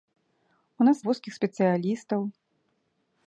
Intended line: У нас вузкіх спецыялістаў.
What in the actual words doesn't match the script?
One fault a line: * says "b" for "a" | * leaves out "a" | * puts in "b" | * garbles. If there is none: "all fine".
all fine